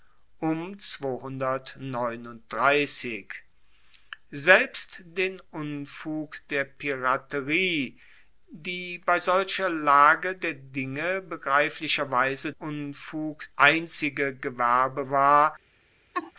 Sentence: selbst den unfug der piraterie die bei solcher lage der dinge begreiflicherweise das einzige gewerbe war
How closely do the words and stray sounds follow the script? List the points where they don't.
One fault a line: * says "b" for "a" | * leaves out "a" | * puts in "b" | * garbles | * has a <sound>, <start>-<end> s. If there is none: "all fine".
* says "unfug" for "das"
* has a laugh, 16.1-16.3 s